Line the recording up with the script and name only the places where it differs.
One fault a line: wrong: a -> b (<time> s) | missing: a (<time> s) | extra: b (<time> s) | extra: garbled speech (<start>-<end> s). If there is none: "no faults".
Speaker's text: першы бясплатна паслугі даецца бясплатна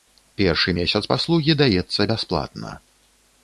wrong: бясплатна -> месяц (0.8 s)